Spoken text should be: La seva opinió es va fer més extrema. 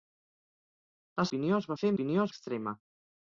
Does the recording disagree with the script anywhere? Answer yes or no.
yes